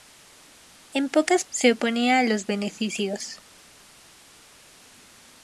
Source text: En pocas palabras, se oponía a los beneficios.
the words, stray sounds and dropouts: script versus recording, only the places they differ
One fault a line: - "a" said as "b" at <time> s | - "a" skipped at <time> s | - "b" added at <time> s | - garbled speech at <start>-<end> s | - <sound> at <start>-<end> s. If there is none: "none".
- "palabras" skipped at 1.4 s